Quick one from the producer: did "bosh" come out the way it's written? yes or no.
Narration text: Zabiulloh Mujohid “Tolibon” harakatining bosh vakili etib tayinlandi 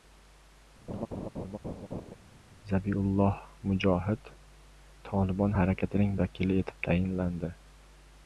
no